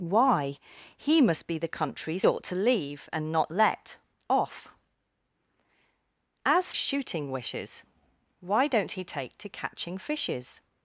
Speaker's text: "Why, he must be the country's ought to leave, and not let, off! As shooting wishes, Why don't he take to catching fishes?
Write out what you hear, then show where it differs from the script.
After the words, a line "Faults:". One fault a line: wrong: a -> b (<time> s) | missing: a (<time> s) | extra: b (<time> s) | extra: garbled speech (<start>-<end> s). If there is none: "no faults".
"Why, he must be the country's ought to leave, and not let, off! As shooting wishes, Why don't he take to catching fishes?
Faults:
no faults